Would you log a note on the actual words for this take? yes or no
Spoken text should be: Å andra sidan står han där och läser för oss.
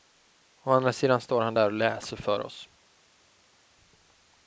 no